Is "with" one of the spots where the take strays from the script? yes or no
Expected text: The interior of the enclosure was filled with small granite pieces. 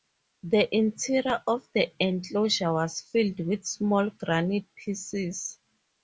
no